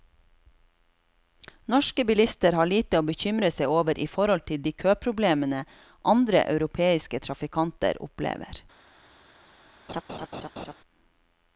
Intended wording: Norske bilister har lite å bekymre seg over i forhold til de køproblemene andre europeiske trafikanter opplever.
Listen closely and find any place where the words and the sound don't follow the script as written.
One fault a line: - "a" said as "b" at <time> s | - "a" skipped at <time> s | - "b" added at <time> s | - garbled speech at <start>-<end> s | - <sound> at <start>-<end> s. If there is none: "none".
- laugh at 9.9-10.7 s